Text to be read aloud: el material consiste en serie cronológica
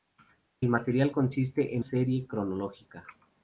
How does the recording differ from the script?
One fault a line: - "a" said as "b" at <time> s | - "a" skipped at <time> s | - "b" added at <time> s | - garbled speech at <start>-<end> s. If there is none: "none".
none